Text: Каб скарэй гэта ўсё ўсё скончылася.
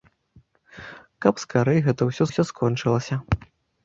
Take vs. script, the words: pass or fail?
pass